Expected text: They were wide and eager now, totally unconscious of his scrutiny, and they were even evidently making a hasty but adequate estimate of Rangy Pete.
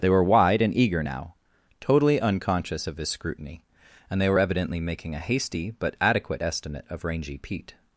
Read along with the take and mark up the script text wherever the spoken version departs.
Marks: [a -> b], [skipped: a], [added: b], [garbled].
They were wide and eager now, totally unconscious of his scrutiny, and they were [skipped: even] evidently making a hasty but adequate estimate of Rangy Pete.